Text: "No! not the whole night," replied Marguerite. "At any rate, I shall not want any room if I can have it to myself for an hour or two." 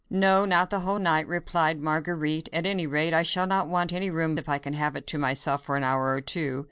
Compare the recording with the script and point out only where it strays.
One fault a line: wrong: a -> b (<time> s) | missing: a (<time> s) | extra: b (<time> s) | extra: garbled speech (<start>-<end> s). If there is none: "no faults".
no faults